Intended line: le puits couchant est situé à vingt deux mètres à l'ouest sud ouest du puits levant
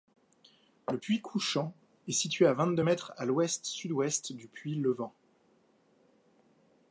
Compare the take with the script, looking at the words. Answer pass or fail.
pass